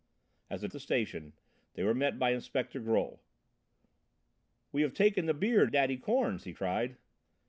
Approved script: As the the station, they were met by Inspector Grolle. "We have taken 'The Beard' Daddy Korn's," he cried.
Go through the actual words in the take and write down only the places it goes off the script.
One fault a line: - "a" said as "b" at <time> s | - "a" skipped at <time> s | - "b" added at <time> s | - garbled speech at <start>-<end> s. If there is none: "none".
none